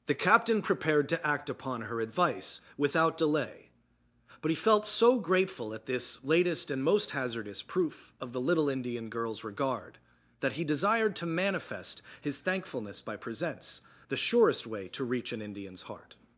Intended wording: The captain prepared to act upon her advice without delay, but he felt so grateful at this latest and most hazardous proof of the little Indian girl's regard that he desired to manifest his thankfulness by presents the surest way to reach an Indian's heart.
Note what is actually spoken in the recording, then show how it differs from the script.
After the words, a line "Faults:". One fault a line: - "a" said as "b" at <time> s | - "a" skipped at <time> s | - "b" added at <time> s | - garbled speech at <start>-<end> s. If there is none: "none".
The captain prepared to act upon her advice without delay, but he felt so grateful at this latest and most hazardous proof of the little Indian girl's regard that he desired to manifest his thankfulness by presents the surest way to reach an Indian's heart.
Faults:
none